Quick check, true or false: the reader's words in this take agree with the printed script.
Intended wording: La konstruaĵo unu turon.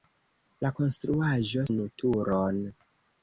true